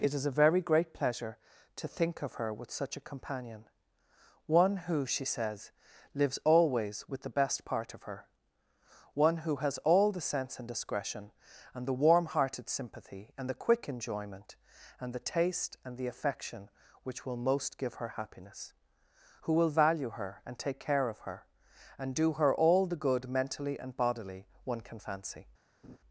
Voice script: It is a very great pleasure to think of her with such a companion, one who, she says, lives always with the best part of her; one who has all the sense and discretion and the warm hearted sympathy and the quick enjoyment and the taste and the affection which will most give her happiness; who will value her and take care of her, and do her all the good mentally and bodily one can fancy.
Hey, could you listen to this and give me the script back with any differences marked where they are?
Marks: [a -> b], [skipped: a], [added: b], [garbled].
It is a very great pleasure to think of her with such a companion, one who, she says, lives always with the best part of her; one who has all the sense and discretion and the warm hearted sympathy and the quick enjoyment and the taste and the affection which will most give her happiness; who will value her and take care of her, and do her all the good mentally and bodily one can fancy.